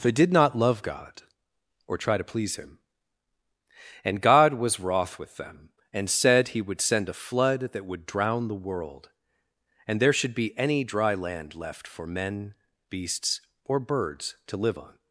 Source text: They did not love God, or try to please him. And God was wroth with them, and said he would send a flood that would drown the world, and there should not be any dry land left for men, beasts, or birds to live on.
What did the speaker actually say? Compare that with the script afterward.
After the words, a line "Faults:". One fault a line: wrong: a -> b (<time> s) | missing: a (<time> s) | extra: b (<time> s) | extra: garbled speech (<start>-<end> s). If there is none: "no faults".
They did not love God, or try to please him. And God was wroth with them, and said he would send a flood that would drown the world, and there should be any dry land left for men, beasts, or birds to live on.
Faults:
missing: not (10.3 s)